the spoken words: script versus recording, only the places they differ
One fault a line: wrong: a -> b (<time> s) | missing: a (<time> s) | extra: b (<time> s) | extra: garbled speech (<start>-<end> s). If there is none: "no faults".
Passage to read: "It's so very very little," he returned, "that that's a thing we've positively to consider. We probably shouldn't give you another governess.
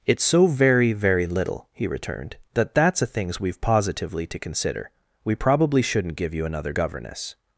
wrong: thing -> things (3.1 s)